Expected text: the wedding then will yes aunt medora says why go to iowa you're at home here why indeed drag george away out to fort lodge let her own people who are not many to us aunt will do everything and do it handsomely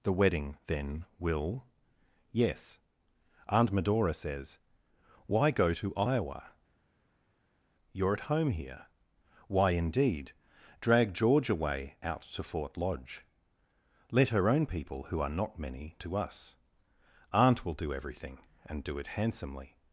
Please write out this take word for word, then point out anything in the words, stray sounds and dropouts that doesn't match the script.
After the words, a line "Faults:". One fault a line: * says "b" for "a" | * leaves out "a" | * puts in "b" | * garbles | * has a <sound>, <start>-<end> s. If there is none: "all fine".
the wedding then will yes aunt medora says why go to iowa you're at home here why indeed drag george away out to fort lodge let her own people who are not many to us aunt will do everything and do it handsomely
Faults:
all fine